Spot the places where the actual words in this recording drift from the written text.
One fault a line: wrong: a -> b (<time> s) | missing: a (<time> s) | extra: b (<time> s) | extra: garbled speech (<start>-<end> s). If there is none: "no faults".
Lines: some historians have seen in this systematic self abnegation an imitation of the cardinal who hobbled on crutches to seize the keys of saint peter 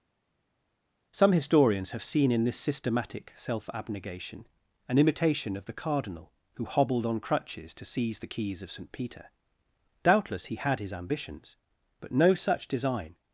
extra: doubtless he had his ambitions but no such design (10.0 s)